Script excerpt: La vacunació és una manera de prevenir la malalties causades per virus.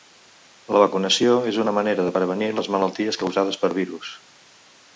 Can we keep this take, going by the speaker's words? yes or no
no